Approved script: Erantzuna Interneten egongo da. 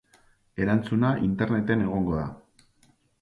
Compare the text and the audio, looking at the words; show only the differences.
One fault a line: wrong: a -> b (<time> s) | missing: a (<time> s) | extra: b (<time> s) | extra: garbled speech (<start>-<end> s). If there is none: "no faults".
no faults